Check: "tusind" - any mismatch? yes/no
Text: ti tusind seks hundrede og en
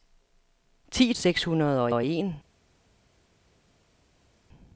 yes